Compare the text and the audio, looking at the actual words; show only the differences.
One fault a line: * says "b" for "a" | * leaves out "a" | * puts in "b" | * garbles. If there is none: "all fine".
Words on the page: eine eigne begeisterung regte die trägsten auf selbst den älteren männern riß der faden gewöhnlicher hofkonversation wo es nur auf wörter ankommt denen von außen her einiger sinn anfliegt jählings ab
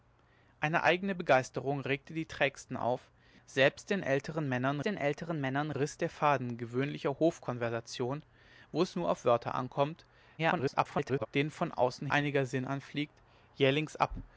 * puts in "den älteren männern"
* garbles
* leaves out "her"